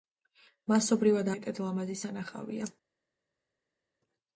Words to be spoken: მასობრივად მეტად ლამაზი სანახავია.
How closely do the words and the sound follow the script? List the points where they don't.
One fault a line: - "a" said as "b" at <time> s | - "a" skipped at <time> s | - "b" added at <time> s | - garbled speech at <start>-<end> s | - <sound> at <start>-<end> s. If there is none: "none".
none